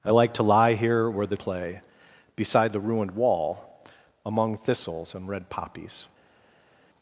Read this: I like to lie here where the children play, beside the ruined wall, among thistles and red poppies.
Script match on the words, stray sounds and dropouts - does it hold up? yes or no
no